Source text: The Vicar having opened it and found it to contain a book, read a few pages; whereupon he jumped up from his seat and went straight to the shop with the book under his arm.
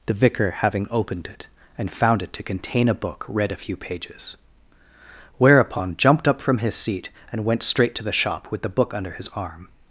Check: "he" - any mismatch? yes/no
yes